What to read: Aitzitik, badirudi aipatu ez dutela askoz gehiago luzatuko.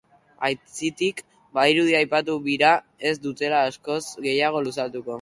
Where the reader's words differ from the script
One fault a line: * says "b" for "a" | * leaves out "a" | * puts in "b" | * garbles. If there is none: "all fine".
* puts in "bira"